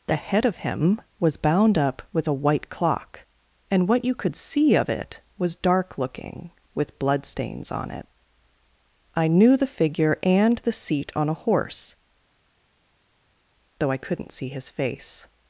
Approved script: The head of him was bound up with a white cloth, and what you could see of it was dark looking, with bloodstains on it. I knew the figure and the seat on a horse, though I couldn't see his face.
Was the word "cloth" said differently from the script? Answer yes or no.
yes